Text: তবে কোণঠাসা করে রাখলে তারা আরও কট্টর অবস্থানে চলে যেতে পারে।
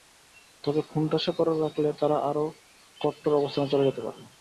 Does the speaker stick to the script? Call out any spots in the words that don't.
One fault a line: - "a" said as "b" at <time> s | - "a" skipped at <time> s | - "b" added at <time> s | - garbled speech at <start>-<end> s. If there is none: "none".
none